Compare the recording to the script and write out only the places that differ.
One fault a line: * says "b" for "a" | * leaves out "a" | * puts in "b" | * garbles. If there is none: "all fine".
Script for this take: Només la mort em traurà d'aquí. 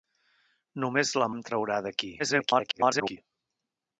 * leaves out "mort"
* garbles